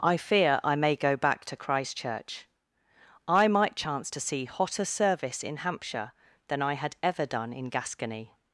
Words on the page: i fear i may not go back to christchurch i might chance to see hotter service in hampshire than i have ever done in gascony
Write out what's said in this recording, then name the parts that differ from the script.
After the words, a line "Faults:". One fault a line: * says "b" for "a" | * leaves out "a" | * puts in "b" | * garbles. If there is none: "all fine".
i fear i may go back to christchurch i might chance to see hotter service in hampshire than i had ever done in gascony
Faults:
* leaves out "not"
* says "had" for "have"